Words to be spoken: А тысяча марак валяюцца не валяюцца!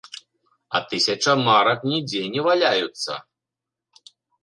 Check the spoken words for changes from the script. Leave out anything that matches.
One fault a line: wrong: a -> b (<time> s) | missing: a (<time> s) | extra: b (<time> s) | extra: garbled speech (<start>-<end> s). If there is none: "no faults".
wrong: валяюцца -> нідзе (1.9 s)